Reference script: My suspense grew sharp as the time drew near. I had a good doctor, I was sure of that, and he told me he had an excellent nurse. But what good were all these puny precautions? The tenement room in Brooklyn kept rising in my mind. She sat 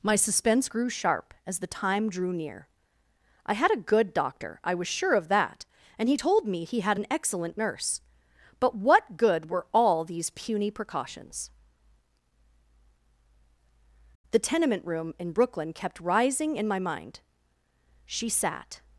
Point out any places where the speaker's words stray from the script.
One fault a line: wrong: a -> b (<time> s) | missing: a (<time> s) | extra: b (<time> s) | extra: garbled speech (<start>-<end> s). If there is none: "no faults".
no faults